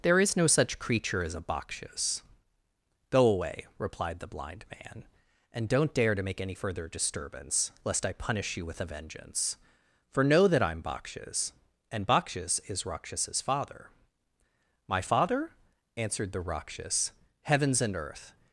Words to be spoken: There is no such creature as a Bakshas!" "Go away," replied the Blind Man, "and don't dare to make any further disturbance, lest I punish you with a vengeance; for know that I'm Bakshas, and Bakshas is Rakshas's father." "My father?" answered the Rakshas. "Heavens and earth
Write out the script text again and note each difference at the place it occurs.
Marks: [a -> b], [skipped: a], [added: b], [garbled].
There is no such creature as a Bakshas!" "Go away," replied the Blind Man, "and don't dare to make any further disturbance, lest I punish you with a vengeance; for know that I'm Bakshas, and Bakshas is Rakshas's father." "My father?" answered the Rakshas. "Heavens and earth